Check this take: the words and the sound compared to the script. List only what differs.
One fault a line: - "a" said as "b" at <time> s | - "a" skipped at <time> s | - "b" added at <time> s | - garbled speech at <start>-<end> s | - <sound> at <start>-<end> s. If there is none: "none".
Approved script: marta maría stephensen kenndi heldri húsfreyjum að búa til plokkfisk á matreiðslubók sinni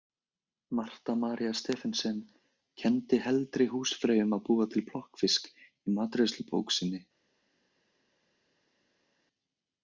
- "á" said as "í" at 5.5 s